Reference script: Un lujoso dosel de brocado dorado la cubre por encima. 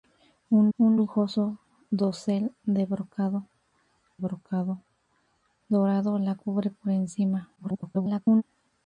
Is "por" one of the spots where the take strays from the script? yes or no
no